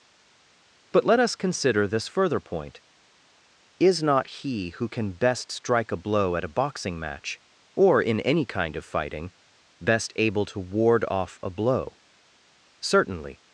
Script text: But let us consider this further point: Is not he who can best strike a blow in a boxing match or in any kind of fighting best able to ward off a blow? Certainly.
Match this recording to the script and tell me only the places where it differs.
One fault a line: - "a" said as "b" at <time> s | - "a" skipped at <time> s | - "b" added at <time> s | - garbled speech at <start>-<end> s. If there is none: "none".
- "in" said as "at" at 6.4 s